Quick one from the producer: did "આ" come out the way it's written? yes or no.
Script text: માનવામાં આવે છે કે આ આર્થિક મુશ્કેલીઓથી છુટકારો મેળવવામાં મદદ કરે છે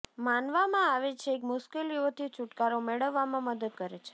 no